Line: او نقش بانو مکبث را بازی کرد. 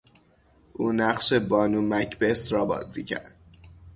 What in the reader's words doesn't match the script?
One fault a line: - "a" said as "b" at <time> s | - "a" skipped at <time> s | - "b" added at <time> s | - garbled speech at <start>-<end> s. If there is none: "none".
none